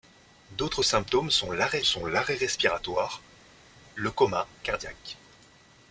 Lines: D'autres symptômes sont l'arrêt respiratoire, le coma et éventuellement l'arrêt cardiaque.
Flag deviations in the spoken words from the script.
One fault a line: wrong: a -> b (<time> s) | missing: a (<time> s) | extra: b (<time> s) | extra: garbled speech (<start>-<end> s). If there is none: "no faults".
extra: sont l'arrêt (1.8 s)
missing: et éventuellement l'arrêt (4.5 s)